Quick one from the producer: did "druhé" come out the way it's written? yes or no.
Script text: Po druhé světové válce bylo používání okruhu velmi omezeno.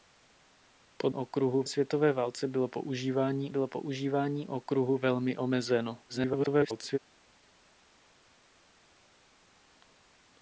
no